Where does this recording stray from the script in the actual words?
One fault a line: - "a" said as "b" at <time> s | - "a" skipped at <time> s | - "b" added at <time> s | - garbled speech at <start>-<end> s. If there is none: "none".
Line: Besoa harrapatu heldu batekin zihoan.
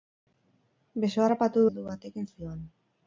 none